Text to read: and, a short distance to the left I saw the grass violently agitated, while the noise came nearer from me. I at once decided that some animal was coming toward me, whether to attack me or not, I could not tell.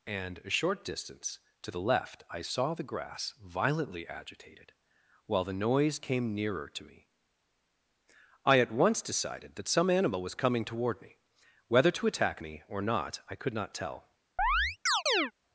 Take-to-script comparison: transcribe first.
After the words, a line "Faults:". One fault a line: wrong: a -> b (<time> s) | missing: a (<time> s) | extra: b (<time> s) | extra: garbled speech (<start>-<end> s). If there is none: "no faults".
and, a short distance to the left I saw the grass violently agitated, while the noise came nearer to me. I at once decided that some animal was coming toward me, whether to attack me or not, I could not tell.
Faults:
wrong: from -> to (6.7 s)